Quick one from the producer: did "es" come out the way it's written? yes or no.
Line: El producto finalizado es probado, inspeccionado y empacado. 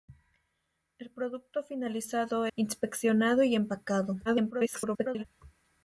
no